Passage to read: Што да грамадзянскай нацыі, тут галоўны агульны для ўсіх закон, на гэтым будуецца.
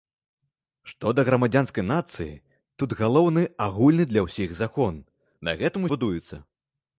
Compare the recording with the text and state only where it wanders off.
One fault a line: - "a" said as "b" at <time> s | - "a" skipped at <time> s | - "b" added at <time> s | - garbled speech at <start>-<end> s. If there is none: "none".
none